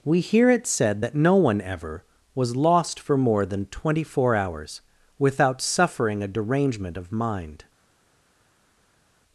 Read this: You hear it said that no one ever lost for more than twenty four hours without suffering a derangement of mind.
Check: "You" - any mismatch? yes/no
yes